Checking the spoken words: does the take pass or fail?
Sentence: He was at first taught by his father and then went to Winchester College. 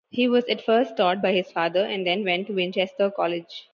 pass